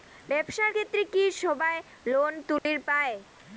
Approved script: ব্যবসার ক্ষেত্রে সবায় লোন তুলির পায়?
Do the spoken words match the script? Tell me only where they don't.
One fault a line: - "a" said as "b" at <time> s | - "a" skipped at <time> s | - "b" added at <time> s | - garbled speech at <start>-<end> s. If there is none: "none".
- "কি" added at 1.0 s